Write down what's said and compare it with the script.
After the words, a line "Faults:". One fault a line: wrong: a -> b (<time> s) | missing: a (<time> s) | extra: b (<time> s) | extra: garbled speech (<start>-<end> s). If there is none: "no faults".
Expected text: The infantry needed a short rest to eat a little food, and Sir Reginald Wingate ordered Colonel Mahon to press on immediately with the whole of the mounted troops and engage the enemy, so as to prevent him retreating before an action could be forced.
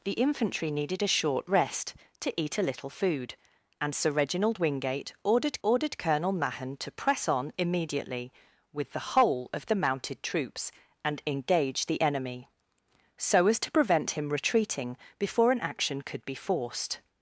The infantry needed a short rest to eat a little food, and Sir Reginald Wingate ordered ordered Colonel Mahon to press on immediately with the whole of the mounted troops and engage the enemy, so as to prevent him retreating before an action could be forced.
Faults:
extra: ordered (5.6 s)